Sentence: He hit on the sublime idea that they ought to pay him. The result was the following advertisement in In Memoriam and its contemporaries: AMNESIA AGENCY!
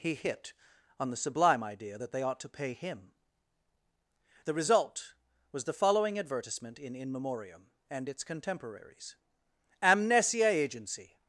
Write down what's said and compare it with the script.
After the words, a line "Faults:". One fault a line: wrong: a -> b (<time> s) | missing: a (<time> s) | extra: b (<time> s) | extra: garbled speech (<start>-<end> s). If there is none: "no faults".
He hit on the sublime idea that they ought to pay him. The result was the following advertisement in In Memoriam and its contemporaries: AMNESIA AGENCY!
Faults:
no faults